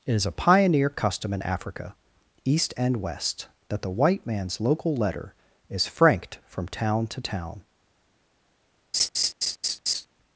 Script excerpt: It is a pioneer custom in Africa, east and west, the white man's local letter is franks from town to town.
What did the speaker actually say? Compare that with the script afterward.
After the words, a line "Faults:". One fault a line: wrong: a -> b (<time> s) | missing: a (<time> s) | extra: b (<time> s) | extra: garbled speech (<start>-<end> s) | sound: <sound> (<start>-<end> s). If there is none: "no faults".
It is a pioneer custom in Africa, east and west, that the white man's local letter is franked from town to town.
Faults:
extra: that (3.7 s)
wrong: franks -> franked (5.8 s)
sound: laugh (8.9-10.1 s)